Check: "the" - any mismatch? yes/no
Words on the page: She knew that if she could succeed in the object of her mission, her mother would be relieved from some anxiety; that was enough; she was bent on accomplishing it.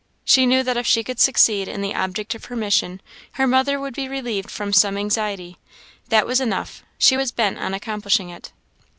no